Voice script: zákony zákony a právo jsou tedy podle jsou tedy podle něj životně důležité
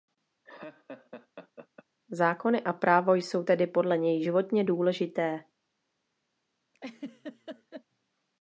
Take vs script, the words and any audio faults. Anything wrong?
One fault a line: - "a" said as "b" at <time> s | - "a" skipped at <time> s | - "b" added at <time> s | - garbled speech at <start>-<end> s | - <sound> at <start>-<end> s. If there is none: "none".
- laugh at 0.4-1.9 s
- "zákony" skipped at 2.6 s
- "jsou tedy podle" skipped at 4.0 s
- laugh at 6.7-7.8 s